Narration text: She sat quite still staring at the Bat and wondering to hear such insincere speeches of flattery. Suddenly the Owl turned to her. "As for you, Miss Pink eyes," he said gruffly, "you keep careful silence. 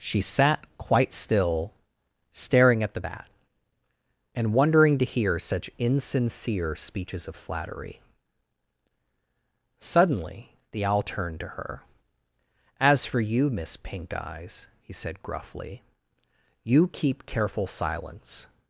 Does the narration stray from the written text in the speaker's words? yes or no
no